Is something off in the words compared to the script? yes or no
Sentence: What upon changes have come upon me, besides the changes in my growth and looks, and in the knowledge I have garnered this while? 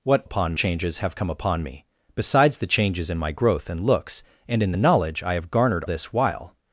no